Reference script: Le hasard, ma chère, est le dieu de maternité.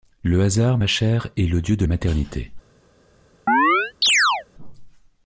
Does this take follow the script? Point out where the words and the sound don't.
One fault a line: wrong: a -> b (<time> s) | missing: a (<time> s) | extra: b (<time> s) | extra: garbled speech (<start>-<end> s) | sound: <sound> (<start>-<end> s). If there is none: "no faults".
sound: chirp (3.5-4.5 s)